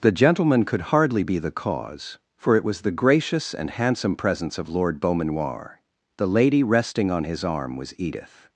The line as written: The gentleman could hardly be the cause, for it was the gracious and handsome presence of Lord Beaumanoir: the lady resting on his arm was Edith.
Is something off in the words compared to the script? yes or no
no